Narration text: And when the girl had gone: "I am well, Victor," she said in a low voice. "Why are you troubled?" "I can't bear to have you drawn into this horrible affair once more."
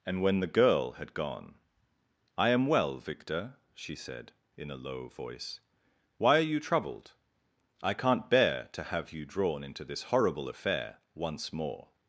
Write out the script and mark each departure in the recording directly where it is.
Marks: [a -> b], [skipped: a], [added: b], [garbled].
And when the girl had gone: "I am well, Victor," she said in a low voice. "Why are you troubled?" "I can't bear to have you drawn into this horrible affair once more."